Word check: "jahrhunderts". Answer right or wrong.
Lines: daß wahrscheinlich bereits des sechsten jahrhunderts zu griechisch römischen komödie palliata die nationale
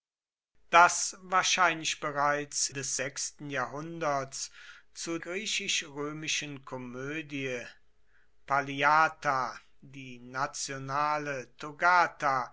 right